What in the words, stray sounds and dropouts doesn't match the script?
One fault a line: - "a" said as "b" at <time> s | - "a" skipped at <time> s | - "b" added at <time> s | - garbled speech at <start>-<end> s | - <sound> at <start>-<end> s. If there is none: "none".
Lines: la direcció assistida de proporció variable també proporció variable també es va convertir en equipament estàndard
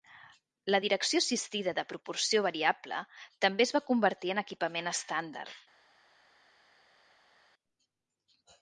- "proporció variable també" skipped at 3.7 s